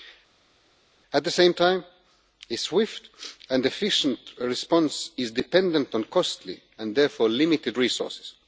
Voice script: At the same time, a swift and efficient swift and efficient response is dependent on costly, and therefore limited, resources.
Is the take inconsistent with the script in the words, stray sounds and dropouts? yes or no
yes